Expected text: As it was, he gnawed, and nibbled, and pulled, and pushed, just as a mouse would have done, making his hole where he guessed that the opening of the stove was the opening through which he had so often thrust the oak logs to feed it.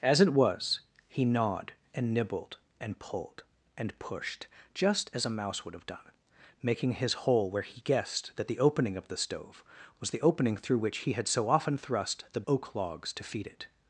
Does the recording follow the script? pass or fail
pass